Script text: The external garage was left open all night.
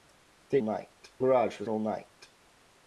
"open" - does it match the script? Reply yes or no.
no